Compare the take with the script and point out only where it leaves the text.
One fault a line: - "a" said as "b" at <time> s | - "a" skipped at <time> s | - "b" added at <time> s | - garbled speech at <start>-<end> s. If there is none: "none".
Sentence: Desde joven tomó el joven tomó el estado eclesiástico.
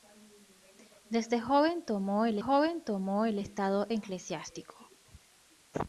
none